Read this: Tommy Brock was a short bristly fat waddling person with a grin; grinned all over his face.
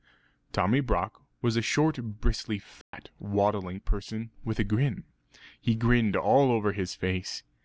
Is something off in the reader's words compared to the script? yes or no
yes